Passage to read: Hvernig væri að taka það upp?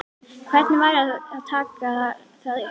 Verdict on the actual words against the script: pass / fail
pass